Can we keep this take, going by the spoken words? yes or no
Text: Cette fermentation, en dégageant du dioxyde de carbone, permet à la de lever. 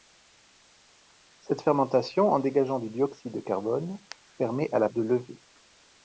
yes